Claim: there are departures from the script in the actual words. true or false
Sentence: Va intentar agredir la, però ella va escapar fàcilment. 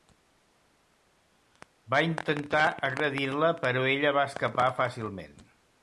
false